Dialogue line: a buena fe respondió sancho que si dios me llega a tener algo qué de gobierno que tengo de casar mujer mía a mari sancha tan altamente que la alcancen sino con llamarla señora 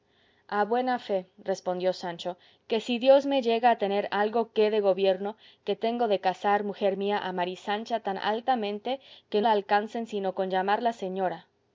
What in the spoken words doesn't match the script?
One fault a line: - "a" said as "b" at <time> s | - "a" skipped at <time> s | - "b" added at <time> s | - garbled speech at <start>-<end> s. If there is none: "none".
none